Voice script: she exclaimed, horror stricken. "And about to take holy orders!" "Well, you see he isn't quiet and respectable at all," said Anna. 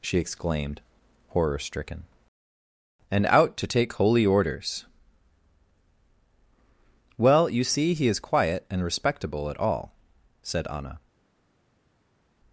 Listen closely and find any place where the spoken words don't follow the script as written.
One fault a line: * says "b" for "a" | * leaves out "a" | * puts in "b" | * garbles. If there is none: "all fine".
* says "out" for "about"
* says "is" for "isn't"